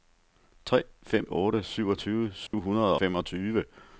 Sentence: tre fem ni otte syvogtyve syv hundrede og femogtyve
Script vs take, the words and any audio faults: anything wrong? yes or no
yes